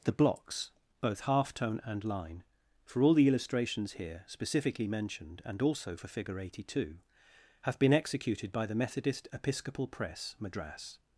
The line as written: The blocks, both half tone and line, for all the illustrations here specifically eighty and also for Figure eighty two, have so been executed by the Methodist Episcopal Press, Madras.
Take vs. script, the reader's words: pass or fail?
fail